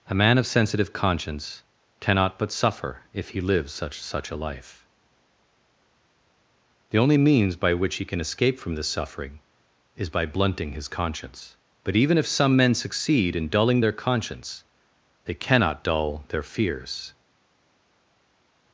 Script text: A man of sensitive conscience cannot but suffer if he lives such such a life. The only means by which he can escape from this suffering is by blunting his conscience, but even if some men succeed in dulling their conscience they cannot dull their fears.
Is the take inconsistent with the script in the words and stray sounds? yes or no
no